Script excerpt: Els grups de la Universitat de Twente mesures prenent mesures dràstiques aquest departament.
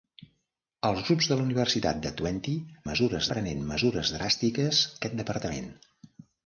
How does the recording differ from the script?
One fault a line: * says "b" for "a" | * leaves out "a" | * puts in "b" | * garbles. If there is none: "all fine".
all fine